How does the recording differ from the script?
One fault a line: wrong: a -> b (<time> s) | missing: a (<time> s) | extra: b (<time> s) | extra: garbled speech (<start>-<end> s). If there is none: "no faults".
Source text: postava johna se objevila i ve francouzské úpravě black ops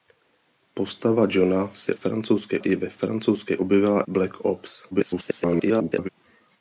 wrong: objevila -> francouzské (1.9 s)
wrong: úpravě -> objevila (3.6 s)
extra: garbled speech (4.9-6.1 s)